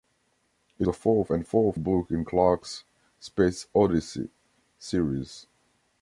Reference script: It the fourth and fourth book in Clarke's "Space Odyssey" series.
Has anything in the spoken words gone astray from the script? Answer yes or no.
no